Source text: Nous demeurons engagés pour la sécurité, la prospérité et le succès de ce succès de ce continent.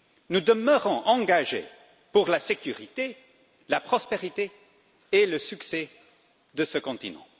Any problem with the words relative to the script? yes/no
yes